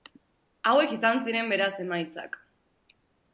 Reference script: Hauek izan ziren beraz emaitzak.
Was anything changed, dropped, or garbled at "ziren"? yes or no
no